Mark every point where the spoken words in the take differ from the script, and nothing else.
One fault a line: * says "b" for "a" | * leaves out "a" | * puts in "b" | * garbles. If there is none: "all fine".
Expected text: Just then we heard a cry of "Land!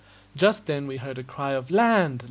all fine